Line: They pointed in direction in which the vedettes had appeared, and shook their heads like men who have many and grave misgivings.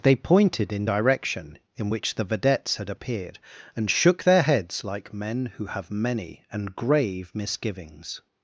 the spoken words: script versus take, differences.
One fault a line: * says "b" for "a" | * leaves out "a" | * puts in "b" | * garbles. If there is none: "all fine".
all fine